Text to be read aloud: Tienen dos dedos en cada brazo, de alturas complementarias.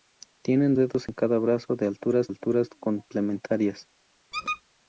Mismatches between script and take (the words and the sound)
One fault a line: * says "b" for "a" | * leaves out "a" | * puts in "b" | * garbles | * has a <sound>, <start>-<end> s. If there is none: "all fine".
* leaves out "dos"
* puts in "alturas"
* has a squeak, 4.3-4.6 s